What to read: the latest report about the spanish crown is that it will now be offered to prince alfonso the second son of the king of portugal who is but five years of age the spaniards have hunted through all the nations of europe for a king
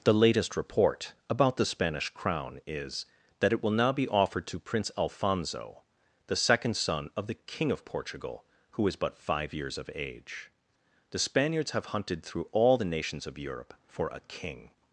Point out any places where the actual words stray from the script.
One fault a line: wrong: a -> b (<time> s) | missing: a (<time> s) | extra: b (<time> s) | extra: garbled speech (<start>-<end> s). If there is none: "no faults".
no faults